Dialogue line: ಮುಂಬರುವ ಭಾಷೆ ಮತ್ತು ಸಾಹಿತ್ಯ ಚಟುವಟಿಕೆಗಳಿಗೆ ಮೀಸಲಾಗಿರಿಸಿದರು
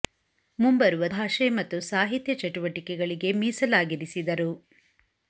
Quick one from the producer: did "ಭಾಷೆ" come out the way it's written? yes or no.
yes